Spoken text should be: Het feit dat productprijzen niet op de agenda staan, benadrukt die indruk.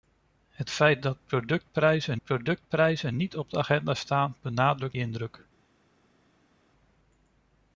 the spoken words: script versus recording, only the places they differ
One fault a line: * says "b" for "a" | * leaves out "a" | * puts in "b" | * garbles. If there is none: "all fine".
* puts in "productprijzen"
* leaves out "die"